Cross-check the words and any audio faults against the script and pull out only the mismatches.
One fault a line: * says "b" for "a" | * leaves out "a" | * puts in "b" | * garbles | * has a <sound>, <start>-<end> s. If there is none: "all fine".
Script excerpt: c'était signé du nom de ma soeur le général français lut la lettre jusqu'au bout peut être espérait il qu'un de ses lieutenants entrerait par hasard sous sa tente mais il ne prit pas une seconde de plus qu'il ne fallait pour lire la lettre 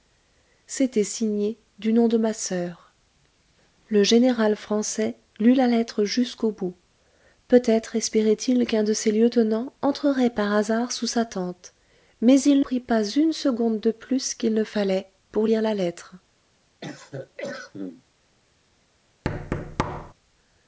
* leaves out "ne"
* has a cough, 16.8-18.0 s
* has a thud, 19.2-20.1 s